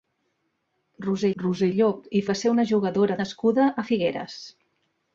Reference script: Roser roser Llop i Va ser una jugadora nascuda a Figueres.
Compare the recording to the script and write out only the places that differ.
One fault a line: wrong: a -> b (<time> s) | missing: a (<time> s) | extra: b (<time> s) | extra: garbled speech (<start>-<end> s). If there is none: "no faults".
no faults